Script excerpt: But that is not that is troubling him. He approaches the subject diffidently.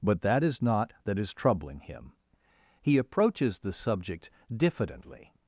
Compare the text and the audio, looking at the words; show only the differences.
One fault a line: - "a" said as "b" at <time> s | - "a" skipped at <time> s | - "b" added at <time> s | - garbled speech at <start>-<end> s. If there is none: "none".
none